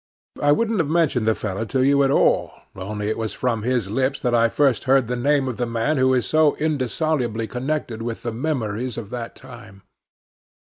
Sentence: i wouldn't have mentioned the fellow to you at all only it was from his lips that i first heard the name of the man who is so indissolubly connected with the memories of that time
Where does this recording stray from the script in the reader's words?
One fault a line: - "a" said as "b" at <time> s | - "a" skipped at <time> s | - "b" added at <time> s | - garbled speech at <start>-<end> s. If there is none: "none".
none